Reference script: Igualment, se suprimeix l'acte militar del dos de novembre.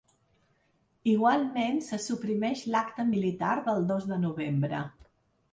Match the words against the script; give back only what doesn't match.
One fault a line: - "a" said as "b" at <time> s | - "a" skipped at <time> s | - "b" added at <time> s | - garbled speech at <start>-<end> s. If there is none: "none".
none